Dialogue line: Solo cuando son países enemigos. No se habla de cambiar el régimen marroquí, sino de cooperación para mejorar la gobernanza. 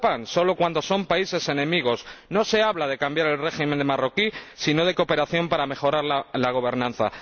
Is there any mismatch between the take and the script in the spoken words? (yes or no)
no